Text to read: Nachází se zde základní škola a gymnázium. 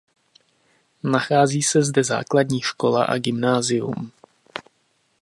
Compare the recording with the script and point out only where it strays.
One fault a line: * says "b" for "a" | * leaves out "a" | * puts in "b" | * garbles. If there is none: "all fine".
all fine